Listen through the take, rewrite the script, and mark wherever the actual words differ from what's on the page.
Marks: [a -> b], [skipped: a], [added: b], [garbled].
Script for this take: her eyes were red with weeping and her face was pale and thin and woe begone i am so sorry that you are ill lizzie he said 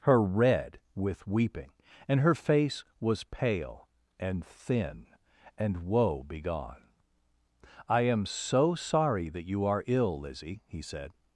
her [skipped: eyes were] red with weeping and her face was pale and thin and woe begone i am so sorry that you are ill lizzie he said